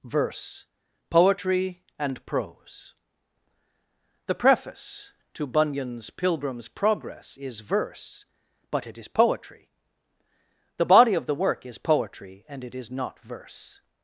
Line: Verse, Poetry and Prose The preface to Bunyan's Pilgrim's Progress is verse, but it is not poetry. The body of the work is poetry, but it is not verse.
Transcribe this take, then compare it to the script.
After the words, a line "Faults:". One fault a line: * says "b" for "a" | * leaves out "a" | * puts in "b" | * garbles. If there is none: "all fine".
Verse, Poetry and Prose The preface to Bunyan's Pilgrim's Progress is verse, but it is poetry. The body of the work is poetry, and it is not verse.
Faults:
* leaves out "not"
* says "and" for "but"